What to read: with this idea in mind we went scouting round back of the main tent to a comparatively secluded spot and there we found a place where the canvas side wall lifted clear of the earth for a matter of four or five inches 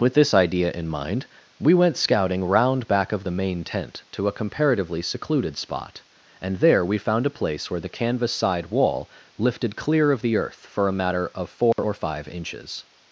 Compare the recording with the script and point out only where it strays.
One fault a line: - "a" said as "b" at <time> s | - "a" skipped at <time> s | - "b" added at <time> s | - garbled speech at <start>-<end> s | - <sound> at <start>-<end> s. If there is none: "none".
- dropout at 11.7-11.8 s